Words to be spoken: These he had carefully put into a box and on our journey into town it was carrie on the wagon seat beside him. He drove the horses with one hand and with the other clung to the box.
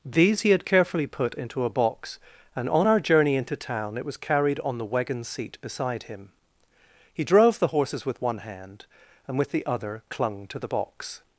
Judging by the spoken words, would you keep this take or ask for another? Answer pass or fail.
fail